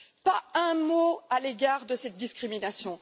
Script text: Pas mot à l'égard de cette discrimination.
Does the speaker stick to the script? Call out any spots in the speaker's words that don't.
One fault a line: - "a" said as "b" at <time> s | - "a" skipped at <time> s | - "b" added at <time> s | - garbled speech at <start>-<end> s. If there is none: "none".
- "un" added at 0.5 s